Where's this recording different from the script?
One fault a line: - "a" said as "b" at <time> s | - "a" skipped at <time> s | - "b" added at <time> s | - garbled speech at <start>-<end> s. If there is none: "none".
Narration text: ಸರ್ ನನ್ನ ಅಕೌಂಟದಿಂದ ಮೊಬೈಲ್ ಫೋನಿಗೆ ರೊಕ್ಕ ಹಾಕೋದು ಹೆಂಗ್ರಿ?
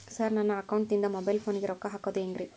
none